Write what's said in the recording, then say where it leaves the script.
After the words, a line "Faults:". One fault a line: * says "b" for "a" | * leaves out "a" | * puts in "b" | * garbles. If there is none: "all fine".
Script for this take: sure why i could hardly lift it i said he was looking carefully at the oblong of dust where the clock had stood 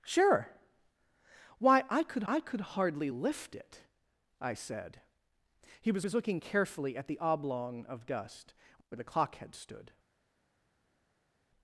sure why i could i could hardly lift it i said he was was looking carefully at the oblong of dust where the clock had stood
Faults:
* puts in "i could"
* puts in "was"